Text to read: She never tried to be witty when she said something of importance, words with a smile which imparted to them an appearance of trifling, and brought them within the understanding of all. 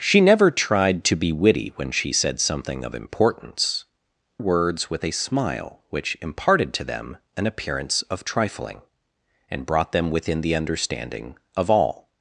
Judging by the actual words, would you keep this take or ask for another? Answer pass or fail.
pass